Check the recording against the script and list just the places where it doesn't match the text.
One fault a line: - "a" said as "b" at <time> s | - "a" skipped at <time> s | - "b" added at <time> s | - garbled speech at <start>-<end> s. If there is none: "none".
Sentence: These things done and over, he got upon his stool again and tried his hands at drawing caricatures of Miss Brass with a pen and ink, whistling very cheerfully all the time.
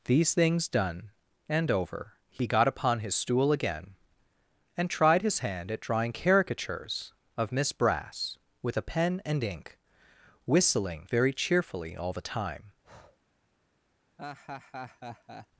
- "hands" said as "hand" at 5.4 s